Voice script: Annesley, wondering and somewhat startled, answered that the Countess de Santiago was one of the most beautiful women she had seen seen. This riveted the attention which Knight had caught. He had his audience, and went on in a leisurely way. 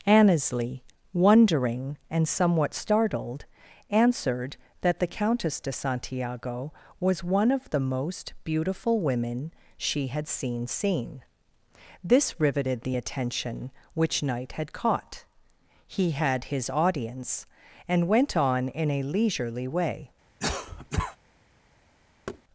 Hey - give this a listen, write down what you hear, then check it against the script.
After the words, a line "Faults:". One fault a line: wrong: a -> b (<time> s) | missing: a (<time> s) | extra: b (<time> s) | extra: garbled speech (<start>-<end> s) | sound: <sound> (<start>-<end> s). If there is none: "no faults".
Annesley, wondering and somewhat startled, answered that the Countess de Santiago was one of the most beautiful women she had seen seen. This riveted the attention which Knight had caught. He had his audience, and went on in a leisurely way.
Faults:
sound: cough (20.4-21.2 s)
sound: thud (22.3-22.4 s)